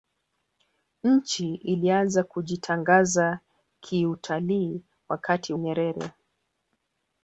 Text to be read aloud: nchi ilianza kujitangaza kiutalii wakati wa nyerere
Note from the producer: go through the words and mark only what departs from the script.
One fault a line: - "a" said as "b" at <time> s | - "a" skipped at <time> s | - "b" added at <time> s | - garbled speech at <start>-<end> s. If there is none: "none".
- "wa" skipped at 5.5 s